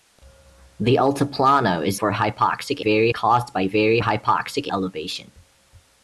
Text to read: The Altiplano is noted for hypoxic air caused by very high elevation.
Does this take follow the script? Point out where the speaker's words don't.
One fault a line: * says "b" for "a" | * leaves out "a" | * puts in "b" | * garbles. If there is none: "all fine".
* leaves out "noted"
* says "very" for "air"
* says "hypoxic" for "high"